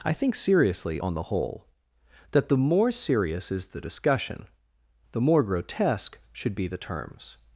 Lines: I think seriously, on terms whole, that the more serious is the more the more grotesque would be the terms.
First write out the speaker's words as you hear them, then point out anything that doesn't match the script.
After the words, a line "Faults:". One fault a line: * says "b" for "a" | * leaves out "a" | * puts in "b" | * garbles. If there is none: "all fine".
I think seriously, on the whole, that the more serious is the discussion the more grotesque should be the terms.
Faults:
* says "the" for "terms"
* says "discussion" for "more"
* says "should" for "would"